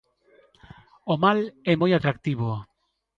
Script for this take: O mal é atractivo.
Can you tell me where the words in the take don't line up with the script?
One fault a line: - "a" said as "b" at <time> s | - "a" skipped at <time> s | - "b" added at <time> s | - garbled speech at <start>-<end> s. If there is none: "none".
- "moi" added at 1.8 s